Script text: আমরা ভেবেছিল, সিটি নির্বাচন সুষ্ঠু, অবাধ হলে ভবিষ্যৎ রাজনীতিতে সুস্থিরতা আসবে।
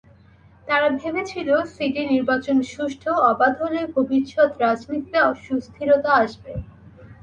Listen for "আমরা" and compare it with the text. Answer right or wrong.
wrong